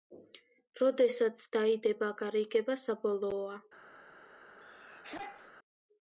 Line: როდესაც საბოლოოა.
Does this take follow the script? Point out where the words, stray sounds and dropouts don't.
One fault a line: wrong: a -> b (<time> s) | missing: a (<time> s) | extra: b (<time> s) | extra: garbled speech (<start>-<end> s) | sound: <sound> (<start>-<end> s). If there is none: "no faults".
extra: დაიდება გარიგება (1.6 s)
sound: sneeze (4.6-5.5 s)